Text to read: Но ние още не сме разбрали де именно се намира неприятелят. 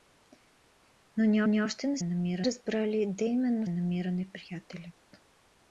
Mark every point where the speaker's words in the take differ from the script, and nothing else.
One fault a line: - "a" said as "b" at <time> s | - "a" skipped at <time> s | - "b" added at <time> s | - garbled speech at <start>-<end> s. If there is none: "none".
- "ние" added at 1.4 s
- "сме" said as "намира" at 2.0 s
- "се" skipped at 3.7 s